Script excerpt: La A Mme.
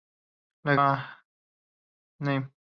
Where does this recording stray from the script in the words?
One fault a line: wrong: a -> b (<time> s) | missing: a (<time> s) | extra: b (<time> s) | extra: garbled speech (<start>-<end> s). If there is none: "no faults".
no faults